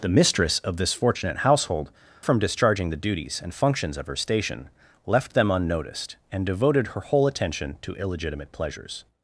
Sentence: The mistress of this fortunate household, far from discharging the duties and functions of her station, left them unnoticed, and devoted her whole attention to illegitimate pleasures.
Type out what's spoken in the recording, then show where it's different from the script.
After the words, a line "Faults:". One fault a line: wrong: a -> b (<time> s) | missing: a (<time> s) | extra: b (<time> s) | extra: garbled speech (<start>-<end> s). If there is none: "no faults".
The mistress of this fortunate household, from discharging the duties and functions of her station, left them unnoticed, and devoted her whole attention to illegitimate pleasures.
Faults:
missing: far (1.9 s)